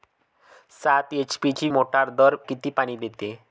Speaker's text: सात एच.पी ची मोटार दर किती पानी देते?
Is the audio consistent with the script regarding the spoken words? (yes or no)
yes